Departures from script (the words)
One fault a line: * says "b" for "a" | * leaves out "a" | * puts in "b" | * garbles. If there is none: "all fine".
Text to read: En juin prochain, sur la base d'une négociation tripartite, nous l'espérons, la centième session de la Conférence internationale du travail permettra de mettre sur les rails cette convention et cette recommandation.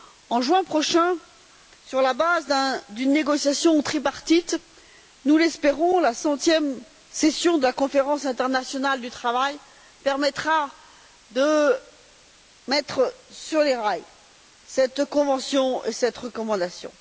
all fine